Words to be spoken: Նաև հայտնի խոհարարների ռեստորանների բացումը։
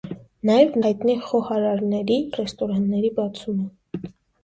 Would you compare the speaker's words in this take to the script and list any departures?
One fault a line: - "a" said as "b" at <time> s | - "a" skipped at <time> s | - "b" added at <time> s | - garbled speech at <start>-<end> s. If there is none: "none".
none